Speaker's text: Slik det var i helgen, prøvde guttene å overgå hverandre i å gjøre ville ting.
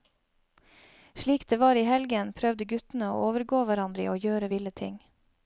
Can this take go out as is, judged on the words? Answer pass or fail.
pass